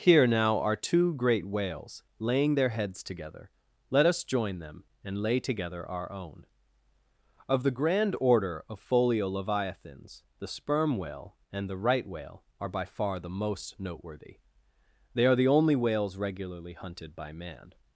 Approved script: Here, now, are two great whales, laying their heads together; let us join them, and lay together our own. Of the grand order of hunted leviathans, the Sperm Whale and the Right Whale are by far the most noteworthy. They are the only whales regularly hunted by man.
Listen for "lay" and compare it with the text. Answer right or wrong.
right